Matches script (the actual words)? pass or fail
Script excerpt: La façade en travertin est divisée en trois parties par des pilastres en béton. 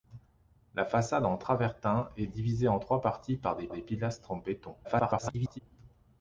fail